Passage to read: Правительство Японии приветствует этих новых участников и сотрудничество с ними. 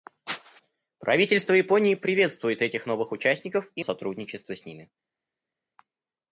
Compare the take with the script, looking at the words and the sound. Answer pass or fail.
pass